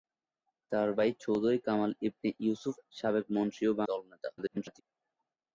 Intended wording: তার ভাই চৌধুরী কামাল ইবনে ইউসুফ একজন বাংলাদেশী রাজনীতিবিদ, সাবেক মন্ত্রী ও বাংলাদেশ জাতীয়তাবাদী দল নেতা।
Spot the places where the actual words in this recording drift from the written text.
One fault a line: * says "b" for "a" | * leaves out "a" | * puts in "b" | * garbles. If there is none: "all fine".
* leaves out "একজন বাংলাদেশী রাজনীতিবিদ"
* leaves out "বাংলাদেশ জাতীয়তাবাদী"
* garbles